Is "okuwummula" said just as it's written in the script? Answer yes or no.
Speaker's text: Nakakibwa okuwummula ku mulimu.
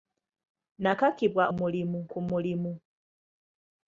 no